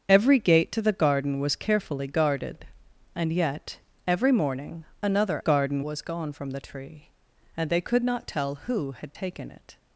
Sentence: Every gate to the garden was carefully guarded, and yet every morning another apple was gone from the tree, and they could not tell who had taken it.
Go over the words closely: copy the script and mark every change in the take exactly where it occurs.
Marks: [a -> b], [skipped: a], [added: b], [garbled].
Every gate to the garden was carefully guarded, and yet every morning another [apple -> garden] was gone from the tree, and they could not tell who had taken it.